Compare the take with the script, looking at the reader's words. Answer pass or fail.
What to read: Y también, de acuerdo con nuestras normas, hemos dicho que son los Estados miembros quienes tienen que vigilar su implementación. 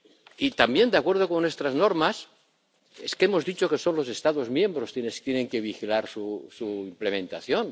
pass